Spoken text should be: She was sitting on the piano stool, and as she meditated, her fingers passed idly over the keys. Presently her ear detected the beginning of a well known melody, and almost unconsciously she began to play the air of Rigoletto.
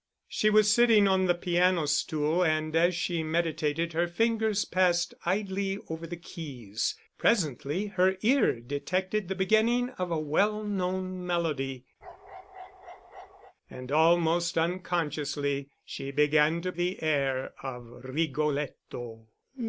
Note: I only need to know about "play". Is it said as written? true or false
false